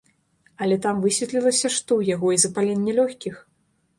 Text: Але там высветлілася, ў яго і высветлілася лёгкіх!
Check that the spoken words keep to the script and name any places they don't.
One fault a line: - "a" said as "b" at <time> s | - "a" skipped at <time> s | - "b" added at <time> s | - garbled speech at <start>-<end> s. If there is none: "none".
- "што" added at 1.8 s
- "высветлілася" said as "запаленне" at 2.5 s